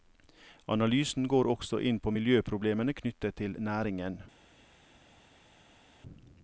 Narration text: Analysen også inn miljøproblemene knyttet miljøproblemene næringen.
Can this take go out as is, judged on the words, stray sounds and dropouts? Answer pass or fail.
fail